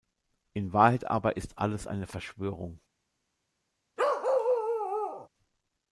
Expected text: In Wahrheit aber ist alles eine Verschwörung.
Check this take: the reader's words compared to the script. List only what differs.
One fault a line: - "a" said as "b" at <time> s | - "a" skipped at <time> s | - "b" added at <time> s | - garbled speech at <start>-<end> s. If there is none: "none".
none